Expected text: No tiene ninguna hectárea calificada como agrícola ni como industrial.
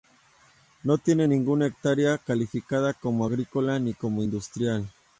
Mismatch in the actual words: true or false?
false